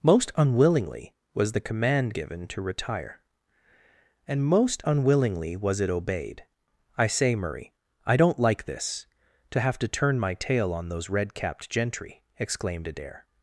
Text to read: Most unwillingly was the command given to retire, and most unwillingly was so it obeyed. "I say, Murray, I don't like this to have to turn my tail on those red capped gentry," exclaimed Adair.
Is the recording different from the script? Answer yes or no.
yes